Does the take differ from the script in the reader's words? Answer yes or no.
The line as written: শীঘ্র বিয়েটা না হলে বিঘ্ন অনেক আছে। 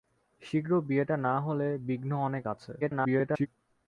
yes